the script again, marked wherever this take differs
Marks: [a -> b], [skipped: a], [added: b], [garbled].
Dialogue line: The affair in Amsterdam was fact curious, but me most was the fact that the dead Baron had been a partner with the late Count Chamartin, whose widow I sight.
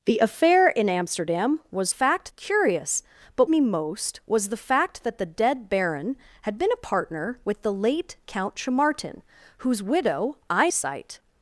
The affair in Amsterdam was fact curious, but me most was the fact that the dead Baron had been a partner with the late Count Chamartin, whose widow I sight.